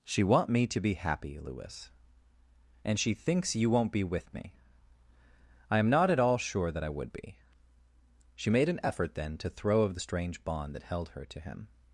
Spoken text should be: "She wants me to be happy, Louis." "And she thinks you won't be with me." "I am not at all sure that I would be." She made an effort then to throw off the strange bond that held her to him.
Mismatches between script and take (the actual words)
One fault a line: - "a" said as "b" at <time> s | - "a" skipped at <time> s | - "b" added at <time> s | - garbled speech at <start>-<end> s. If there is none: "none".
- "wants" said as "want" at 0.2 s
- "off" said as "of" at 9.8 s